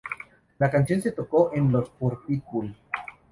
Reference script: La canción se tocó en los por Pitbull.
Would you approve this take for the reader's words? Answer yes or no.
yes